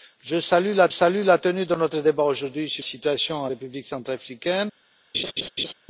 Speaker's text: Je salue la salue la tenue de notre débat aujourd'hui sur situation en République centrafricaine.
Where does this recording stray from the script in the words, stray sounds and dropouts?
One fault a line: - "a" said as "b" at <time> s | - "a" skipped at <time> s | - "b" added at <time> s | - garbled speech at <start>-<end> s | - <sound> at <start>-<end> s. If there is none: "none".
- laugh at 5.1-5.7 s